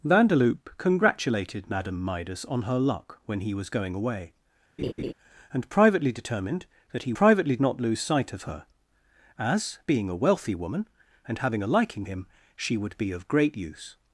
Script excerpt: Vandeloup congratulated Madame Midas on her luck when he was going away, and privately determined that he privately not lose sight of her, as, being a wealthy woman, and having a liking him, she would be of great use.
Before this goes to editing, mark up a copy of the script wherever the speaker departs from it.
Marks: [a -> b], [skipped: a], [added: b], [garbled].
Vandeloup congratulated Madame Midas on her luck when he was going away, and privately determined that he privately not lose sight of her, as, being a wealthy woman, and having a liking him, she would be of great use.